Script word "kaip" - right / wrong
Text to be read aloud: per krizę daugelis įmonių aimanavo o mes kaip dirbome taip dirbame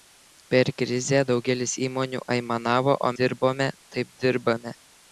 wrong